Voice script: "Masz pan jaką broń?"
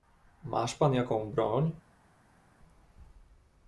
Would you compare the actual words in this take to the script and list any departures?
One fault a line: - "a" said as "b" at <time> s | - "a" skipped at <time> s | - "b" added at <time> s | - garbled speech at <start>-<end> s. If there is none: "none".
none